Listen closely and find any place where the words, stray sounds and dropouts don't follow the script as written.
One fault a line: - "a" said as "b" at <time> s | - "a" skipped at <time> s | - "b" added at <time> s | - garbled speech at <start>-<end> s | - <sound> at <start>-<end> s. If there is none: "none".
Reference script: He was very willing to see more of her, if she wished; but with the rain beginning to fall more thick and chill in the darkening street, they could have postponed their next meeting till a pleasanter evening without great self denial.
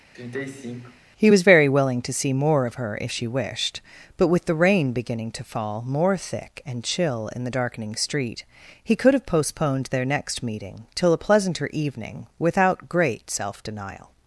- sigh at 0.1-1.0 s
- "they" said as "he" at 8.8 s